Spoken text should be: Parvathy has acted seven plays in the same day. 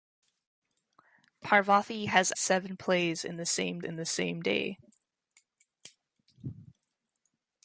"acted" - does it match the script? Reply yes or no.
no